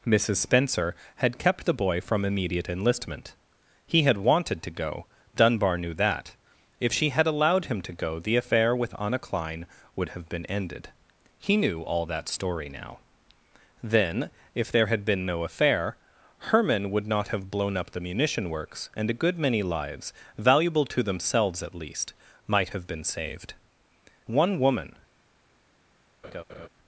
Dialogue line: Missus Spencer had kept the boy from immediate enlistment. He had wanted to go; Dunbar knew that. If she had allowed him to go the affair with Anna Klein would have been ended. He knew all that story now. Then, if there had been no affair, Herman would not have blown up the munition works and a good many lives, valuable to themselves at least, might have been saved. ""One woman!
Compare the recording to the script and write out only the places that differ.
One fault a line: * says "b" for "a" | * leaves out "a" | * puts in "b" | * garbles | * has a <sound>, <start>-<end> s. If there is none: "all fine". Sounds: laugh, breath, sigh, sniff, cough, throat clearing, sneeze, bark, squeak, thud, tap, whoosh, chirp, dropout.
* has a laugh, 26.2-26.7 s